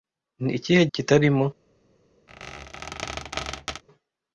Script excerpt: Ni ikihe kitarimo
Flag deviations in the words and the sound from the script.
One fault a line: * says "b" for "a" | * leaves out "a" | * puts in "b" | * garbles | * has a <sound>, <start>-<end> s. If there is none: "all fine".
* has a squeak, 2.3-3.8 s